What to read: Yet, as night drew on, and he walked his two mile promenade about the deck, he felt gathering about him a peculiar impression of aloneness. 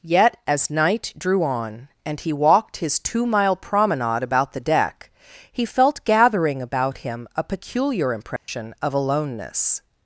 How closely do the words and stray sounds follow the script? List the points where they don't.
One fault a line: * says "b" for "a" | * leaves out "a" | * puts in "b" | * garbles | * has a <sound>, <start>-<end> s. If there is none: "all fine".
* has a dropout, 8.4-8.5 s